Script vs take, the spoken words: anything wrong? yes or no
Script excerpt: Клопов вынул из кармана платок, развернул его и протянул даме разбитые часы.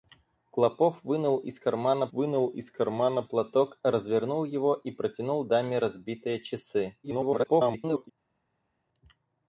yes